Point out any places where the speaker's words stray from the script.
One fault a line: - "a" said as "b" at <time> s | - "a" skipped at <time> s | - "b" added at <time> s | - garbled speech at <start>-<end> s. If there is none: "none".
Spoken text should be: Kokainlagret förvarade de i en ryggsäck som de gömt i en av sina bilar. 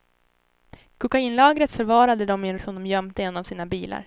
- "ryggsäck" skipped at 2.6 s